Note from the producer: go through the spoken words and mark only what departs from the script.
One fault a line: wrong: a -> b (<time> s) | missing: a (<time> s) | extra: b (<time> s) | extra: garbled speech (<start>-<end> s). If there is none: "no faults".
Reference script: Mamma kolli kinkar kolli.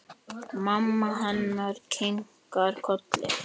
wrong: kolli -> hennar (1.2 s)